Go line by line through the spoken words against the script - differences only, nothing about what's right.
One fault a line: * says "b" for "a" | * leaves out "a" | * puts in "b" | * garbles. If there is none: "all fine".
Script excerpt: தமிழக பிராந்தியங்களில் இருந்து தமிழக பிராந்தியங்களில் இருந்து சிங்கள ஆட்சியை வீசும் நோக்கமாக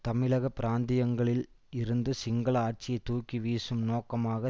* leaves out "தமிழக பிராந்தியங்களில் இருந்து"
* puts in "தூக்கி"